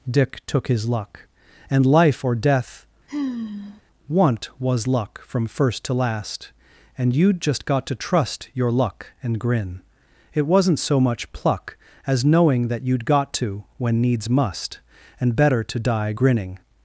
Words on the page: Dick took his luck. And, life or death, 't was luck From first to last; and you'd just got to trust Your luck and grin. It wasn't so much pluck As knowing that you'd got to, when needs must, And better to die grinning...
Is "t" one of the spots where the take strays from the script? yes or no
yes